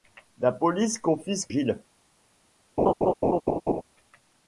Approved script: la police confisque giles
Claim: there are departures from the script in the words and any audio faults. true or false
true